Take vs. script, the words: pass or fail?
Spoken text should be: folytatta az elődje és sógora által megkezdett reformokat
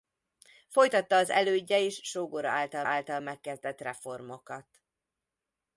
fail